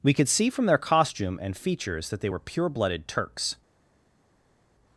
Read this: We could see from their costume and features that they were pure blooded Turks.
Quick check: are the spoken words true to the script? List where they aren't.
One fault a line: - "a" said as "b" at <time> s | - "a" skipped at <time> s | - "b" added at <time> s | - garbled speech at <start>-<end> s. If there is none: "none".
none